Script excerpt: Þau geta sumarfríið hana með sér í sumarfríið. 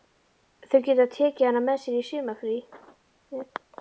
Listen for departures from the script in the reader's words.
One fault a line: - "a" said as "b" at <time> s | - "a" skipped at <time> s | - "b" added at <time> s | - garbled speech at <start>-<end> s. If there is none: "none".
- "sumarfríið" said as "tekið" at 1.2 s